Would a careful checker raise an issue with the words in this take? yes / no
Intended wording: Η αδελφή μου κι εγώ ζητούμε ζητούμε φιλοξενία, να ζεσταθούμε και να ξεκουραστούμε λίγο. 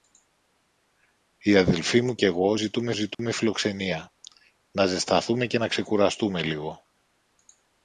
no